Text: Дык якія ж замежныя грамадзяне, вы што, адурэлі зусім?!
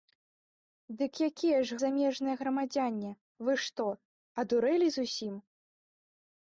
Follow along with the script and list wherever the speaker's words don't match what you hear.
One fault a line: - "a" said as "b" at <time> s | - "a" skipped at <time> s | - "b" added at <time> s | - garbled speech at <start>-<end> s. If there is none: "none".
none